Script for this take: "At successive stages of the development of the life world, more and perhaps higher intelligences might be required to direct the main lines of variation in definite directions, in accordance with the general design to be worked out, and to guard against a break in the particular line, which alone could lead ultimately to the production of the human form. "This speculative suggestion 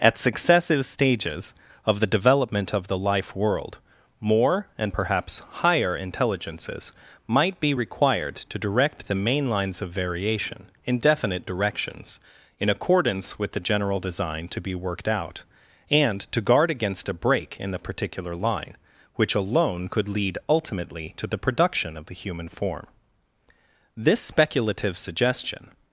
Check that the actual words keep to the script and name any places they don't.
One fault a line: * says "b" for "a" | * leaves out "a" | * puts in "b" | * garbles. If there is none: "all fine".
all fine